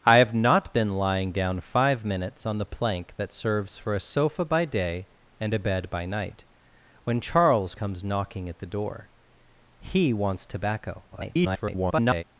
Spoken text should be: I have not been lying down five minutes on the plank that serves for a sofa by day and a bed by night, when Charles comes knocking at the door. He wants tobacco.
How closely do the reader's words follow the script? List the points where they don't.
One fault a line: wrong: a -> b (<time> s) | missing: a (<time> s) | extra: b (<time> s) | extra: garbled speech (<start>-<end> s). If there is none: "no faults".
extra: garbled speech (11.1-12.2 s)